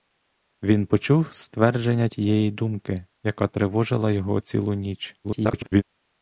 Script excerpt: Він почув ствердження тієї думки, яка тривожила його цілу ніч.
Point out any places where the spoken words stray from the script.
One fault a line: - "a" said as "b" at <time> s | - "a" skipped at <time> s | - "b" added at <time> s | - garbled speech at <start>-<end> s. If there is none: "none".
- garbled speech at 5.2-5.8 s